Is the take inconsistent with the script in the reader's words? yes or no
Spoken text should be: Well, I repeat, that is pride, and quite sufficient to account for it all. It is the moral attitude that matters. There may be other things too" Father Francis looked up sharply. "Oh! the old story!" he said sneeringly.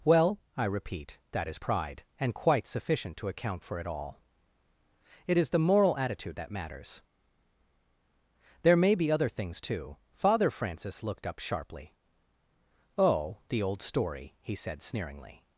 no